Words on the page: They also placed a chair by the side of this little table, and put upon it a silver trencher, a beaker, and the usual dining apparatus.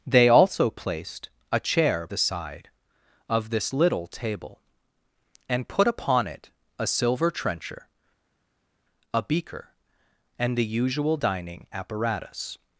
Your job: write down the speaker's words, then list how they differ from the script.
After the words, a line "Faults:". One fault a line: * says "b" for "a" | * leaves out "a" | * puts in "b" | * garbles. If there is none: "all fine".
They also placed a chair the side of this little table, and put upon it a silver trencher, a beaker, and the usual dining apparatus.
Faults:
* leaves out "by"